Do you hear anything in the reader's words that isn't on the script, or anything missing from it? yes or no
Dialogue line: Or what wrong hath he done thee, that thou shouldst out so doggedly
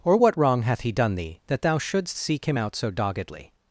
yes